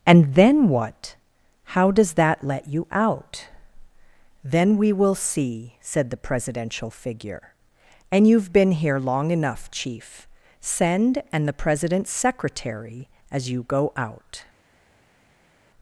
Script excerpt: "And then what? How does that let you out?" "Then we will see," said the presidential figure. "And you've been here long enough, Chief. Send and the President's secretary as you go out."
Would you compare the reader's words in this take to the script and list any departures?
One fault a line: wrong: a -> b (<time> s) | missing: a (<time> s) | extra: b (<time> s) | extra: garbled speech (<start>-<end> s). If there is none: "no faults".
no faults